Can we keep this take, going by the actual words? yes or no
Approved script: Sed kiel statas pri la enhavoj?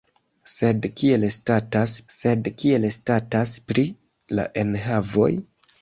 no